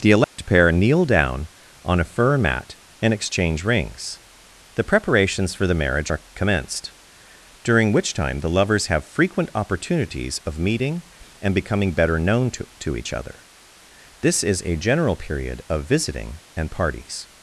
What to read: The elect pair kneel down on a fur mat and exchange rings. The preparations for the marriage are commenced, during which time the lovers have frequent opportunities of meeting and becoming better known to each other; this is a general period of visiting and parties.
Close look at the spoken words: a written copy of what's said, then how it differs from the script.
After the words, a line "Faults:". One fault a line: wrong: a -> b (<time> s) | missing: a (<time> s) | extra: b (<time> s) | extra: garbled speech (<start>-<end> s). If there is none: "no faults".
The elect pair kneel down on a fur mat and exchange rings. The preparations for the marriage are commenced, during which time the lovers have frequent opportunities of meeting and becoming better known to to each other; this is a general period of visiting and parties.
Faults:
extra: to (12.8 s)